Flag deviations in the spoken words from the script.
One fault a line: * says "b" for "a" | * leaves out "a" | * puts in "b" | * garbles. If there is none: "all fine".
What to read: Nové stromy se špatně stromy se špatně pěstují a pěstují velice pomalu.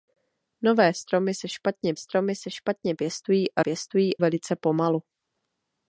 all fine